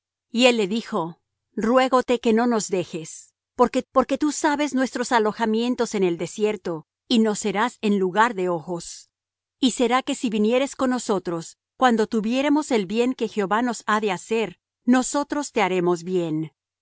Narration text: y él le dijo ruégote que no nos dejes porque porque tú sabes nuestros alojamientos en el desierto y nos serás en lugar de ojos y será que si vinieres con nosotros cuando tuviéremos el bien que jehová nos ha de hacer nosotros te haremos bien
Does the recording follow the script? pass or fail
pass